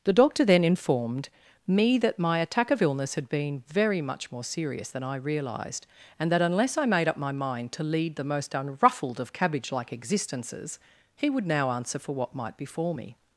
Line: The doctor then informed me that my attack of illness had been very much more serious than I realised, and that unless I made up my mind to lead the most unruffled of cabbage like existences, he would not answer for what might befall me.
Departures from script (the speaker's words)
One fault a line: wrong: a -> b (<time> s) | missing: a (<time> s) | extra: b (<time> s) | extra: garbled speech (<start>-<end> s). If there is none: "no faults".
wrong: not -> now (11.5 s)